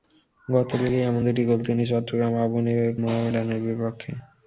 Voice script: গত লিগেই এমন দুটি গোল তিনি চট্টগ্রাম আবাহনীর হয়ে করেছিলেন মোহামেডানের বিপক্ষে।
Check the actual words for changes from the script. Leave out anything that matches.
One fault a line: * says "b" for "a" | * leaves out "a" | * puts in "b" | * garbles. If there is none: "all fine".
* leaves out "করেছিলেন"